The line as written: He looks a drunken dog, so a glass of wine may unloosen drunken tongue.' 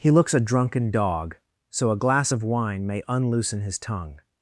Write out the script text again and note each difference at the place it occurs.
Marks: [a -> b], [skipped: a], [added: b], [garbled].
He looks a drunken dog, so a glass of wine may unloosen [drunken -> his] tongue.'